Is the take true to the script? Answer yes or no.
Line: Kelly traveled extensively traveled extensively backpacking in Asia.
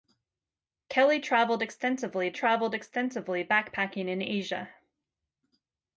yes